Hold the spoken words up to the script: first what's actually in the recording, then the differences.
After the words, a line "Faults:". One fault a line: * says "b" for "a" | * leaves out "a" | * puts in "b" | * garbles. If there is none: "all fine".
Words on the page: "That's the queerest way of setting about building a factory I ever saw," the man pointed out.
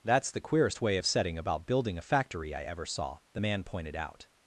"That's the queerest way of setting about building a factory I ever saw," the man pointed out.
Faults:
all fine